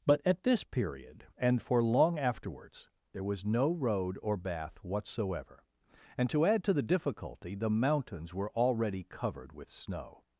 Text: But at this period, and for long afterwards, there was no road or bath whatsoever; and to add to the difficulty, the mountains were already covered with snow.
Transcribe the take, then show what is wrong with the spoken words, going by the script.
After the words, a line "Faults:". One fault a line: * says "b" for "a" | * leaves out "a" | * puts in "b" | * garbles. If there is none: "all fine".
But at this period, and for long afterwards, there was no road or bath whatsoever; and to add to the difficulty, the mountains were already covered with snow.
Faults:
all fine